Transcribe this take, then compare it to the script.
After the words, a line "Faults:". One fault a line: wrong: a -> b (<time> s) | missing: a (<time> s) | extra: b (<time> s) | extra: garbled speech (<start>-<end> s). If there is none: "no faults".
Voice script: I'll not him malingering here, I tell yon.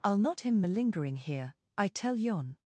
I'll not him malingering here, I tell yon.
Faults:
no faults